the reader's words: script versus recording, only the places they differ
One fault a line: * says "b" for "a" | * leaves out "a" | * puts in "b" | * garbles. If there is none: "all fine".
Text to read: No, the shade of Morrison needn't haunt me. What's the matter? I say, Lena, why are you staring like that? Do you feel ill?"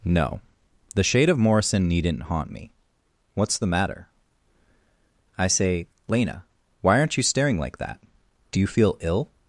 * says "aren't" for "are"